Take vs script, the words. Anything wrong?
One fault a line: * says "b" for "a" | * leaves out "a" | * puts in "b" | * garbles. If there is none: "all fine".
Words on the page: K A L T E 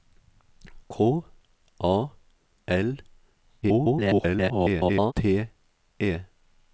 * garbles